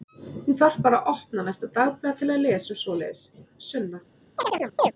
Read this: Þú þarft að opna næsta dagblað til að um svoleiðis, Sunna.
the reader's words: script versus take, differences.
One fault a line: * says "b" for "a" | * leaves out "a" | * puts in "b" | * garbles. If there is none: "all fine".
* puts in "bara"
* puts in "lesa"